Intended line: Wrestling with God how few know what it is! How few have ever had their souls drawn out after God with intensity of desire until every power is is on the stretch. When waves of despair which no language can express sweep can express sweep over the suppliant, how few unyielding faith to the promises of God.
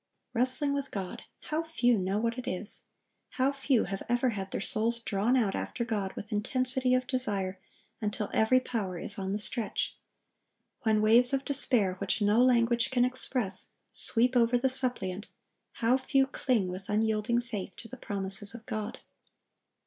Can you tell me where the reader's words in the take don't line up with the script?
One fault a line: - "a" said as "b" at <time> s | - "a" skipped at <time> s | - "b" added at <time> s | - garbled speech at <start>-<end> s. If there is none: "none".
- "is" skipped at 9.2 s
- "can express sweep" skipped at 14.3 s
- "cling with" added at 16.2 s